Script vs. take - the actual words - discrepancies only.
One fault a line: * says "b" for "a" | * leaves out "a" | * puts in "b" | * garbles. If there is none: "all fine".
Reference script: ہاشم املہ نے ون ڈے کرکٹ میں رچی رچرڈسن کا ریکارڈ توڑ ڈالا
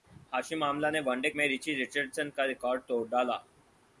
* leaves out "کرکٹ"